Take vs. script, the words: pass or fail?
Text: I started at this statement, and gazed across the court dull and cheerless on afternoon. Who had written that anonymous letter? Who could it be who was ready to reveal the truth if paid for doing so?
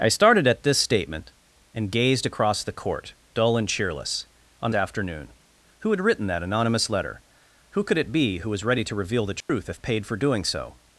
pass